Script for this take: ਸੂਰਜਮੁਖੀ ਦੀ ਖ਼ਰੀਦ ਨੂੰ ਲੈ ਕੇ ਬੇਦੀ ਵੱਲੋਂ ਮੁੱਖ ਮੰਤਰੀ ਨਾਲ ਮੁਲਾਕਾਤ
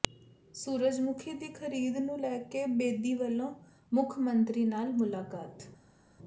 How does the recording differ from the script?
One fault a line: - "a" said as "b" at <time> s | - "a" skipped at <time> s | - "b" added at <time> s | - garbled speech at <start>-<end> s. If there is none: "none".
none